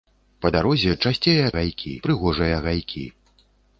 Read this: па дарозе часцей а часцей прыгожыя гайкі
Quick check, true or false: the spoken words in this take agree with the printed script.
false